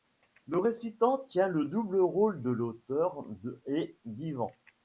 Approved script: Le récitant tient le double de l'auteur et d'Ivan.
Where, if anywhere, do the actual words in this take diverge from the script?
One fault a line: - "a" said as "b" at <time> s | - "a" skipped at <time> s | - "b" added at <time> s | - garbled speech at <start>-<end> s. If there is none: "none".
- "rôle" added at 2.0 s